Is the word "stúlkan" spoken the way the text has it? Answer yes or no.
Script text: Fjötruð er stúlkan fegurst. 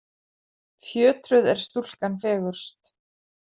yes